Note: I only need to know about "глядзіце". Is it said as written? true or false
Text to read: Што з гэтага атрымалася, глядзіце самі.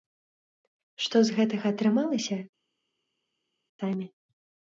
false